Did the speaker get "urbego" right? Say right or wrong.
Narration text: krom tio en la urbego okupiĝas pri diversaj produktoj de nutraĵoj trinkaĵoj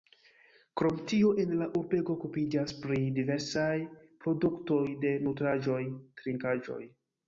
right